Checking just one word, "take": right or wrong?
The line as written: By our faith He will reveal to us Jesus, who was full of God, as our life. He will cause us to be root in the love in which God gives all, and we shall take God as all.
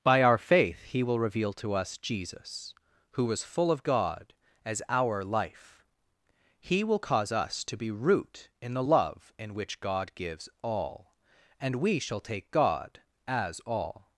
right